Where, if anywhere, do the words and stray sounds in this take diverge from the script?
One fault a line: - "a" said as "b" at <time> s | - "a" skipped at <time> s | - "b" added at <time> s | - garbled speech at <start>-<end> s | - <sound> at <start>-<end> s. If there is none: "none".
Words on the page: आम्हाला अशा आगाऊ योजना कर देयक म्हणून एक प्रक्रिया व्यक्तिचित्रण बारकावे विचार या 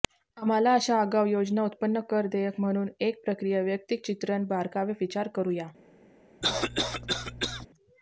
- "उत्पन्न" added at 1.6 s
- "करू" added at 5.3 s
- cough at 6.4-7.7 s